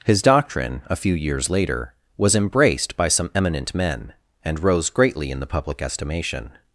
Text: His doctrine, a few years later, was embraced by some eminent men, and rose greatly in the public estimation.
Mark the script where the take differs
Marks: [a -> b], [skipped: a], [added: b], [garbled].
His doctrine, a few years later, was embraced by some eminent men, and rose greatly in the public estimation.